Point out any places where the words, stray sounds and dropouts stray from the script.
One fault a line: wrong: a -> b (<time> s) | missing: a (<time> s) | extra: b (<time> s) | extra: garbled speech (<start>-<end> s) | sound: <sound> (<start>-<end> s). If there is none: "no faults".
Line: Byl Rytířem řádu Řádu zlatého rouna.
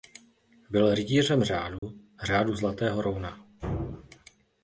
sound: dropout (1.8-1.8 s)